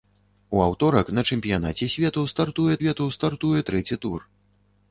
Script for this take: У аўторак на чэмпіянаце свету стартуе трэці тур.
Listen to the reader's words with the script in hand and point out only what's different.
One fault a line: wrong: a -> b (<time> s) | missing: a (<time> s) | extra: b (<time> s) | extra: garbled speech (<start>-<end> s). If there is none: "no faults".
extra: свету стартуе (2.8 s)